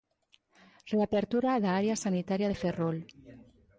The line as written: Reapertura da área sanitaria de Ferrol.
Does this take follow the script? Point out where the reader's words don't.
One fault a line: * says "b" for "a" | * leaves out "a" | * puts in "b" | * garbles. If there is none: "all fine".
all fine